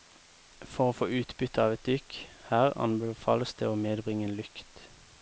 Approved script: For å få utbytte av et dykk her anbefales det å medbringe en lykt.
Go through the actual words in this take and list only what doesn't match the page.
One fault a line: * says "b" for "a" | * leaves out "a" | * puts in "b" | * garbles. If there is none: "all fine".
all fine